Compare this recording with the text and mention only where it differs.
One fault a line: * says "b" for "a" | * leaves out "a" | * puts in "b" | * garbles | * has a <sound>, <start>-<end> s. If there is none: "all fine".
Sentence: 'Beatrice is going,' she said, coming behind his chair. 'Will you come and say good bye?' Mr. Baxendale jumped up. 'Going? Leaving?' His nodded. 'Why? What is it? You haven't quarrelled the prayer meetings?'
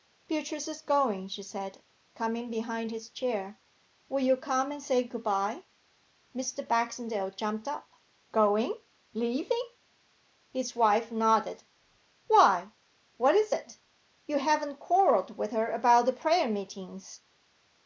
* puts in "wife"
* puts in "with her about"